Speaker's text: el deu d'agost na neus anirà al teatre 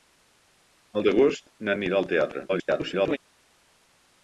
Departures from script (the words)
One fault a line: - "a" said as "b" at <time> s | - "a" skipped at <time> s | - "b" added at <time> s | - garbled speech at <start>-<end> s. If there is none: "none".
- "deu" skipped at 1.1 s
- "neus" skipped at 1.8 s
- garbled speech at 2.5-3.2 s